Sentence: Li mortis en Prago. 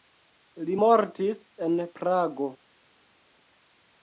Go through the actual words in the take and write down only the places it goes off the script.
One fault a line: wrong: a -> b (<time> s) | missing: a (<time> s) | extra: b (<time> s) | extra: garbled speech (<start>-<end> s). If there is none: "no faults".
no faults